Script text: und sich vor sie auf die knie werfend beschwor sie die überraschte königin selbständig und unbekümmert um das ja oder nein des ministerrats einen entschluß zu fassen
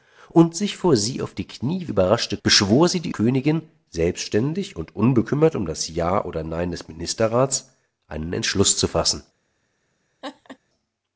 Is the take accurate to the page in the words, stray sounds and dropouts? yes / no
no